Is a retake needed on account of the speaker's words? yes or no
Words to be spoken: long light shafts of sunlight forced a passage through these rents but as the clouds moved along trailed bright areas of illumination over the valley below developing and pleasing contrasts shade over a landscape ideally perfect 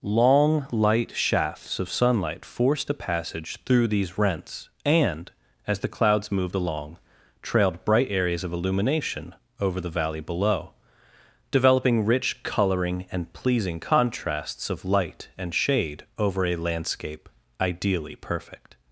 yes